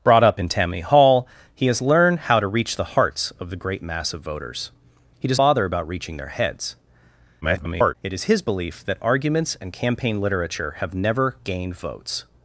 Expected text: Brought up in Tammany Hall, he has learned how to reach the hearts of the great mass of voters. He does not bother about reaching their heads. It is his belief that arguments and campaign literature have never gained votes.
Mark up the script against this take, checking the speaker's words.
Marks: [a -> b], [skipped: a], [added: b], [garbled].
Brought up in Tammany Hall, he has learned how to reach the hearts of the great mass of voters. He does [skipped: not] bother about reaching their heads. [garbled] It is his belief that arguments and campaign literature have never gained votes.